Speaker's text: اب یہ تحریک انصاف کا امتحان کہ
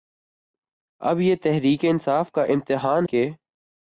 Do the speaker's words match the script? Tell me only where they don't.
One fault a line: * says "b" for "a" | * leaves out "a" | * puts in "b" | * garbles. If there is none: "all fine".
all fine